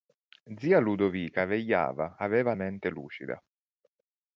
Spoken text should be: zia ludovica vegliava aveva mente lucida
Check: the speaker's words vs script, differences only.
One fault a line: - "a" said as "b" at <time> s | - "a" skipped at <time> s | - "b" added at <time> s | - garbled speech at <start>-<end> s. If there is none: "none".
none